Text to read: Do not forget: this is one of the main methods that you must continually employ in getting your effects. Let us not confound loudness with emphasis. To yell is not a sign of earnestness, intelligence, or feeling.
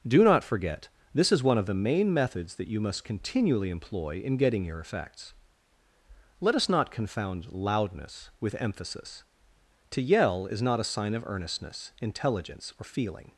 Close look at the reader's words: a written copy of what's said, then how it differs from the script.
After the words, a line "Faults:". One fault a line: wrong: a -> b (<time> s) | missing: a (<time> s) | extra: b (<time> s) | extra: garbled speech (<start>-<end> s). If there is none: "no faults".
Do not forget: this is one of the main methods that you must continually employ in getting your effects. Let us not confound loudness with emphasis. To yell is not a sign of earnestness, intelligence, or feeling.
Faults:
no faults